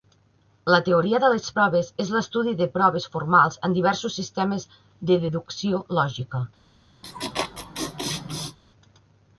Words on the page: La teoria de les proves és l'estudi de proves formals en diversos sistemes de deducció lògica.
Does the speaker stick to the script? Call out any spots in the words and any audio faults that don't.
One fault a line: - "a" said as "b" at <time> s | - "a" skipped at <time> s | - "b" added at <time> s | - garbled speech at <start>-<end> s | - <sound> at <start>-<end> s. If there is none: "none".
- laugh at 7.0-8.6 s